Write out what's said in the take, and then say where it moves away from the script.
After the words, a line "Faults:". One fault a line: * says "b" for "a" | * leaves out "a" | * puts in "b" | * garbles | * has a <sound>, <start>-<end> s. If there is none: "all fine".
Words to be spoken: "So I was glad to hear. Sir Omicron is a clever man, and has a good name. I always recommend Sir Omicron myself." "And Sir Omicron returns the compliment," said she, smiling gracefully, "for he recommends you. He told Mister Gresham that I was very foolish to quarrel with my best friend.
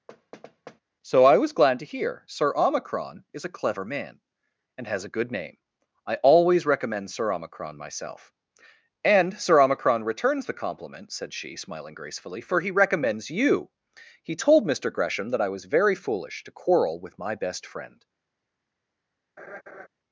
"So I was glad to hear. Sir Omicron is a clever man, and has a good name. I always recommend Sir Omicron myself." "And Sir Omicron returns the compliment," said she, smiling gracefully, "for he recommends you. He told Mister Gresham that I was very foolish to quarrel with my best friend.
Faults:
* has a thud, 0.1-0.8 s
* has a laugh, 19.4-19.9 s